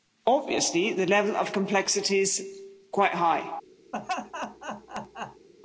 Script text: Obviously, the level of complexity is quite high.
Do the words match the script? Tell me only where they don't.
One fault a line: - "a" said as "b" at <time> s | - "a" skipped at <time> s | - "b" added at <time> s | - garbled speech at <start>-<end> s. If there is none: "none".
none